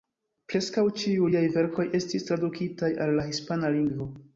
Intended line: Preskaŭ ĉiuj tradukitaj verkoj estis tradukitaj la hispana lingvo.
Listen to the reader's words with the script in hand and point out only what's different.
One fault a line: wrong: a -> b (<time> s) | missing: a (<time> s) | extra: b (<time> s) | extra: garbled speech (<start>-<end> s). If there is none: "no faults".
wrong: tradukitaj -> liaj (1.3 s)
extra: al (3.1 s)